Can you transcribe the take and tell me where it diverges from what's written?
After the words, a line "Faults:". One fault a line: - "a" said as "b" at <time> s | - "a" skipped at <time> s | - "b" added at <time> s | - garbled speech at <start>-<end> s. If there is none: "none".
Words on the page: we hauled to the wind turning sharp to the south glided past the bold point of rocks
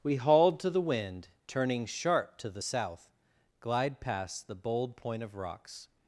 we hauled to the wind turning sharp to the south glide past the bold point of rocks
Faults:
- "glided" said as "glide" at 3.6 s